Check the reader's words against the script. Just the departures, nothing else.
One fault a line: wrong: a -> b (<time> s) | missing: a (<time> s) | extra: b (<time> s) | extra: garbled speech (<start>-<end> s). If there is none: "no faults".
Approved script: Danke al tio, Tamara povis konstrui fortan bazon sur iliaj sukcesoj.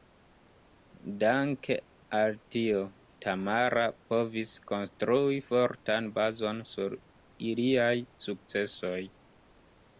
no faults